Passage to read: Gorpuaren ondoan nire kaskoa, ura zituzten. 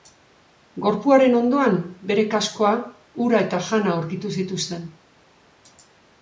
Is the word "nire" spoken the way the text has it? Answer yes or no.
no